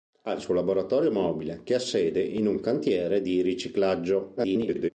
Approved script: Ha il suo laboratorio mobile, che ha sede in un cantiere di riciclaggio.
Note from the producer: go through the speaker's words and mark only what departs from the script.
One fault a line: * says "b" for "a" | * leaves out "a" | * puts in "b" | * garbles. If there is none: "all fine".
* garbles